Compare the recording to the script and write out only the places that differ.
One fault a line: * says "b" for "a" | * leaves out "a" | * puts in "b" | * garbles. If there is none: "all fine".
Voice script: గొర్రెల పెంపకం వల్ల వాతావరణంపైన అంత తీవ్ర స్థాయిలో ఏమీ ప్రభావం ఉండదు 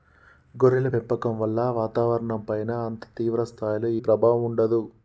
* leaves out "ఏమీ"